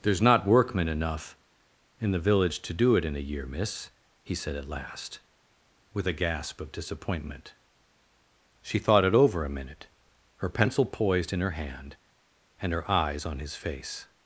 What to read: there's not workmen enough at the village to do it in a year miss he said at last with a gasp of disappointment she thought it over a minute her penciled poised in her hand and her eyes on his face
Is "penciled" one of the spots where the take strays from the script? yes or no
yes